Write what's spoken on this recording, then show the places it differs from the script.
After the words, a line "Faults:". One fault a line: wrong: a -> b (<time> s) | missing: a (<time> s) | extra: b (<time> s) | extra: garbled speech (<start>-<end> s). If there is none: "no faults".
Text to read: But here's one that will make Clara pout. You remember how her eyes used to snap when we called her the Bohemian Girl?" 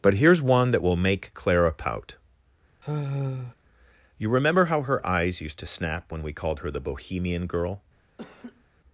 But here's one that will make Clara pout. You remember how her eyes used to snap when we called her the Bohemian Girl?"
Faults:
no faults